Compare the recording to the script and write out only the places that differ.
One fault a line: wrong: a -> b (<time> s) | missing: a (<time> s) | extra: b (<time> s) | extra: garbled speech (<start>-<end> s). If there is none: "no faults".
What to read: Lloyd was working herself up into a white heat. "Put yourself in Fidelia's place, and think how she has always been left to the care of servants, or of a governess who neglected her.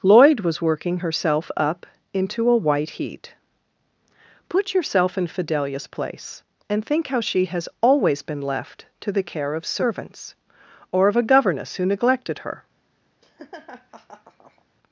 no faults